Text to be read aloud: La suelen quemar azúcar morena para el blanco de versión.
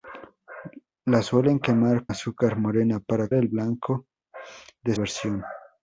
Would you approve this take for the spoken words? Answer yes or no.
yes